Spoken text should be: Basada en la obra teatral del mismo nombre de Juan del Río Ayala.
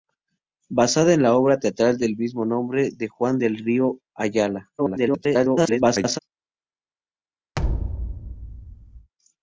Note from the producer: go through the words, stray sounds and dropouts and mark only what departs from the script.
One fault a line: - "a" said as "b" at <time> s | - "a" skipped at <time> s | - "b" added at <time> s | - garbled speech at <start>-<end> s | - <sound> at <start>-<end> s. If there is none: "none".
- garbled speech at 4.8-6.2 s
- thud at 7.6-9.1 s